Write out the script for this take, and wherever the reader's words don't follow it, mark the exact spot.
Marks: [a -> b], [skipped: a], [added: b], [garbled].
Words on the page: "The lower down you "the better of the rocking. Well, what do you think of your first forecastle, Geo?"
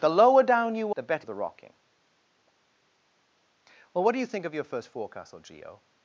"The lower down you "the better of the rocking. Well, what do you think of your first forecastle, Geo?"